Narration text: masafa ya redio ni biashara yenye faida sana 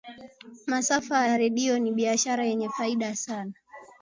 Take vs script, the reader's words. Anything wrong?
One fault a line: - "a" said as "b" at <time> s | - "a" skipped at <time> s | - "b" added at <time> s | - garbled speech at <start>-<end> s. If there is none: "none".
none